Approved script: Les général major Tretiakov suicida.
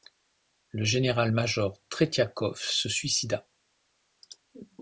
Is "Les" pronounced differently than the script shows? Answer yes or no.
yes